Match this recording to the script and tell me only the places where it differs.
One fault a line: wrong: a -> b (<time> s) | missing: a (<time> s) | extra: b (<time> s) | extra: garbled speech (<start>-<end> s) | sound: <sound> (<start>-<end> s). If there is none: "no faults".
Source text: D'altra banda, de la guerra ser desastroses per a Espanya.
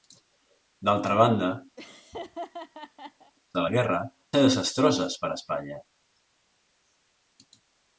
sound: laugh (1.8-3.3 s)